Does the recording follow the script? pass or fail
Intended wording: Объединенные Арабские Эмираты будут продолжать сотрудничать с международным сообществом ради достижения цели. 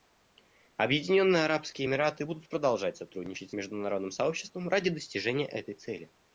fail